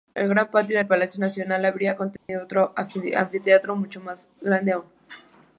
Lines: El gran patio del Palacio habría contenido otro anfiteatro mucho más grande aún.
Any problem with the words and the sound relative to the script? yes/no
yes